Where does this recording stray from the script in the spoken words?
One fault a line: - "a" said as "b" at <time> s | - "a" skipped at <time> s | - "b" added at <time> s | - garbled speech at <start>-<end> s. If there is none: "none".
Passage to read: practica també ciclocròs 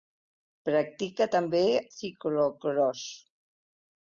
none